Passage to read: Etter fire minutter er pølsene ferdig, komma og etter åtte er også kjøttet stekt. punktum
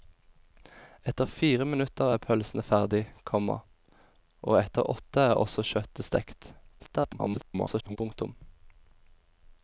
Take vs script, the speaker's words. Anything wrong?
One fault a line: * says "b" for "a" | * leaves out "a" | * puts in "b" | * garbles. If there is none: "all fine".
* garbles